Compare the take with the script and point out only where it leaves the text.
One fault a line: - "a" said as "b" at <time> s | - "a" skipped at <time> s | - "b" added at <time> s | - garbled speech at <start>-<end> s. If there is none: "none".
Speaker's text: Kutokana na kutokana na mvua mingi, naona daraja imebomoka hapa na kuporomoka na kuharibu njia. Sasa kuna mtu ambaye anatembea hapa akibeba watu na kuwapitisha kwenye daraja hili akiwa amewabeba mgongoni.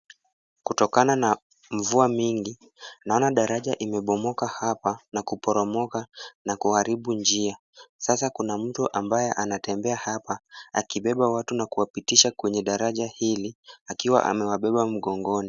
- "kutokana na" skipped at 1.4 s